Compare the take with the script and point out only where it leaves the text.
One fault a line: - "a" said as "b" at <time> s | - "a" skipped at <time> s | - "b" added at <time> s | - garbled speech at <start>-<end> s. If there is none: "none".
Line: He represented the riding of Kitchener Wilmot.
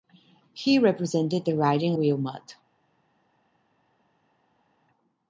- "of Kitchener" skipped at 1.9 s